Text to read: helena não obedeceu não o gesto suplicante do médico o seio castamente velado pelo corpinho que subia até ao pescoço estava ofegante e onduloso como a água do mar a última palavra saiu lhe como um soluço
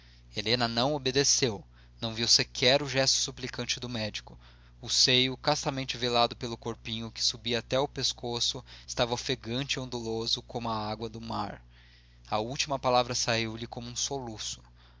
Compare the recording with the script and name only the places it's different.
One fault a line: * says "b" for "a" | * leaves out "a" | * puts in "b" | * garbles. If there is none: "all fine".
* puts in "viu sequer"